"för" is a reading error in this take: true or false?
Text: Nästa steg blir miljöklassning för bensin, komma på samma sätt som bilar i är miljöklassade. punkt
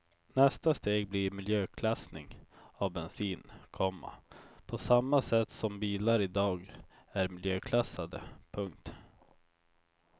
true